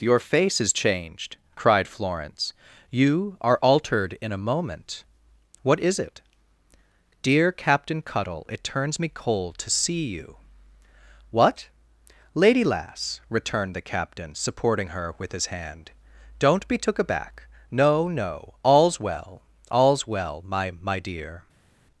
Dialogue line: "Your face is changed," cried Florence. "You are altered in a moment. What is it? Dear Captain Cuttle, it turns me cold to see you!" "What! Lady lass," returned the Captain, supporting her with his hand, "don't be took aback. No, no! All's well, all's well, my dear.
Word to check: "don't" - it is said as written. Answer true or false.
true